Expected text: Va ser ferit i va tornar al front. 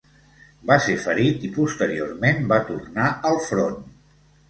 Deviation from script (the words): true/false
true